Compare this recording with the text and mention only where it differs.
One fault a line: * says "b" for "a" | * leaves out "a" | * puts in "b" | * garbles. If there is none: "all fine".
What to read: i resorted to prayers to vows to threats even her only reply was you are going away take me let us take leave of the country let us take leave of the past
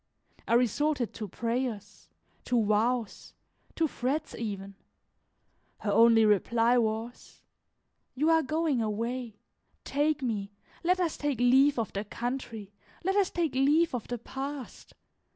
all fine